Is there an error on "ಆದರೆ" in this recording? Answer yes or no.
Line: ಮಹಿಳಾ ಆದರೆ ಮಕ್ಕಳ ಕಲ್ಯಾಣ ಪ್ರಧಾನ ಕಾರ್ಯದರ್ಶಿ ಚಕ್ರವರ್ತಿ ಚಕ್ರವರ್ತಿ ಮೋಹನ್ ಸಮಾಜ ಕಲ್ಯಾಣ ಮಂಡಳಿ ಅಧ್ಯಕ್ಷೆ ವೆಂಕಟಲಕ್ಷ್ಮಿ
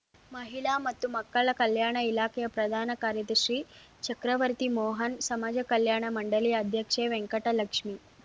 yes